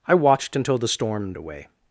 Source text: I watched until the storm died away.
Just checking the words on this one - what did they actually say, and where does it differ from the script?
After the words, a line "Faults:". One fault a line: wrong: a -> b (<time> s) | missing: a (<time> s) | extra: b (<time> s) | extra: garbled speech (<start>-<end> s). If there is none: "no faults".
I watched until the storm away.
Faults:
missing: died (1.3 s)